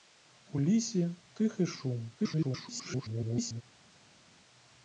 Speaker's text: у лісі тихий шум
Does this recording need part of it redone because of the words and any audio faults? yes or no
yes